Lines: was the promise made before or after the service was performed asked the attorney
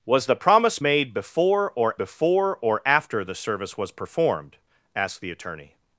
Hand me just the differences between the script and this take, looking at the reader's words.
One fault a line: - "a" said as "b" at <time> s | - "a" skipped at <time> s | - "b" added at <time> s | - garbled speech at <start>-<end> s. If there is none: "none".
- "before or" added at 2.0 s